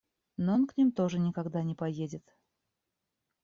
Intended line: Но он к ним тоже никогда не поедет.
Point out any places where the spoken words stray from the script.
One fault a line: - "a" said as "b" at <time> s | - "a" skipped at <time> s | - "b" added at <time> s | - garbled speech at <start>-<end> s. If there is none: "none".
none